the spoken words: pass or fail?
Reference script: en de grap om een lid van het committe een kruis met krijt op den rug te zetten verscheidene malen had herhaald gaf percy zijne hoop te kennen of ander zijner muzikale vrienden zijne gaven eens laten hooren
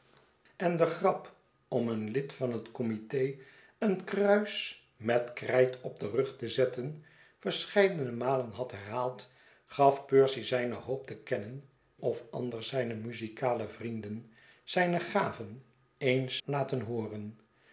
pass